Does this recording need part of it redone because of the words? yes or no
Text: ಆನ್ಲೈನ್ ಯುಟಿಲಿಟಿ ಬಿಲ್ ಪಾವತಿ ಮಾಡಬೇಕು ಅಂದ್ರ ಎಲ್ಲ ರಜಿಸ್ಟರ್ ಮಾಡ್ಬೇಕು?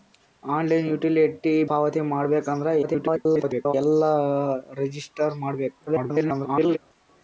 yes